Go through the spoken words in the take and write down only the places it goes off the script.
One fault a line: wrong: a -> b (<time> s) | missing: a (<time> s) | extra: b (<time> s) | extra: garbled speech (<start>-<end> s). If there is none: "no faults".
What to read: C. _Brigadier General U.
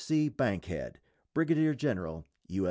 extra: BANKHEAD (0.3 s)